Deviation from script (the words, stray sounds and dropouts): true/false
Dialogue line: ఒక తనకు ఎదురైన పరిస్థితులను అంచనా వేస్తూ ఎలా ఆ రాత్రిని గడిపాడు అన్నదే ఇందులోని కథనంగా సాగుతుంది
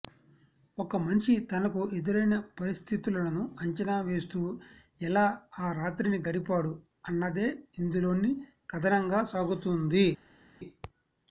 true